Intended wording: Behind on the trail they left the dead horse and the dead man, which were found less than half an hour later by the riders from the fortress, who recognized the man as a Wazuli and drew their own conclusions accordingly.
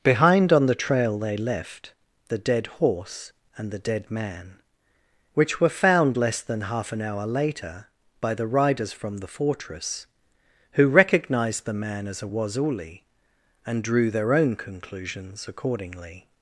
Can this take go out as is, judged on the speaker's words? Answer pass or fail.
pass